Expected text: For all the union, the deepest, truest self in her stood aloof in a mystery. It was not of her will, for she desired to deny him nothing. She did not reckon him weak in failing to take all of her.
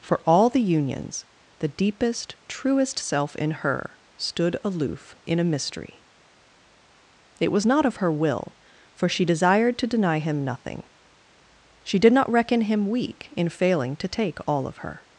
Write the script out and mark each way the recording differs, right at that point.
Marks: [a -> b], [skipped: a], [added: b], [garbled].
For all the [union, -> unions] the deepest, truest self in her stood aloof in a mystery. It was not of her will, for she desired to deny him nothing. She did not reckon him weak in failing to take all of her.